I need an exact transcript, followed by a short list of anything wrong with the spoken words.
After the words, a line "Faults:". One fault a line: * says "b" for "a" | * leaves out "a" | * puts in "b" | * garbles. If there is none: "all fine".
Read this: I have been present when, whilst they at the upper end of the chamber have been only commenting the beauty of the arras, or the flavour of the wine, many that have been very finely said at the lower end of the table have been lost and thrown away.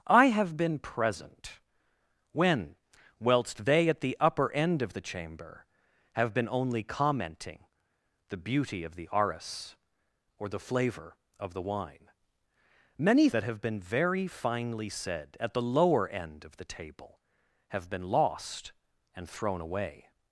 I have been present when, whilst they at the upper end of the chamber have been only commenting the beauty of the arras, or the flavour of the wine, many that have been very finely said at the lower end of the table have been lost and thrown away.
Faults:
all fine